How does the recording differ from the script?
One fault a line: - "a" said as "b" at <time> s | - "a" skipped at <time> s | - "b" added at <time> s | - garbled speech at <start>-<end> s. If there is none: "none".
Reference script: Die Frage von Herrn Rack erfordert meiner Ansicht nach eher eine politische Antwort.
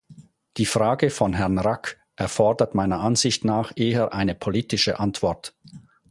none